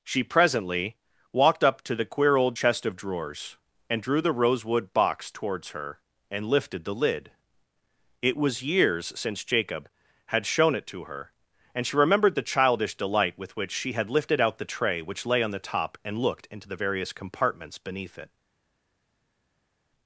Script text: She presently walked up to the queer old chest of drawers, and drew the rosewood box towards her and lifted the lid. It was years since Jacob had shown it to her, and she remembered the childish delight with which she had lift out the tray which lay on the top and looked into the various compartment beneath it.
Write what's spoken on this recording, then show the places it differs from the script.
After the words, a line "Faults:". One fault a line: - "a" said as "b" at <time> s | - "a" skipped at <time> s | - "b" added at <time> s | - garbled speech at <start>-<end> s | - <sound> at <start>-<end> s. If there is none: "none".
She presently walked up to the queer old chest of drawers, and drew the rosewood box towards her and lifted the lid. It was years since Jacob had shown it to her, and she remembered the childish delight with which she had lifted out the tray which lay on the top and looked into the various compartments beneath it.
Faults:
- "lift" said as "lifted" at 14.1 s
- "compartment" said as "compartments" at 17.1 s